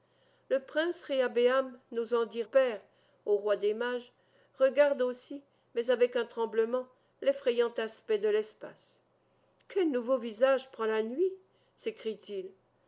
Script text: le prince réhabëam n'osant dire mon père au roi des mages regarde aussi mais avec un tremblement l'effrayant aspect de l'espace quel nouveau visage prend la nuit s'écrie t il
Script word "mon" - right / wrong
wrong